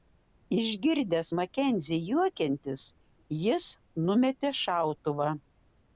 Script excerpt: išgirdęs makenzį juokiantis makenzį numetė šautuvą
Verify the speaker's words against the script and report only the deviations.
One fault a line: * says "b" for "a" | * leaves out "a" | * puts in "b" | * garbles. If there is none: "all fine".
* says "jis" for "makenzį"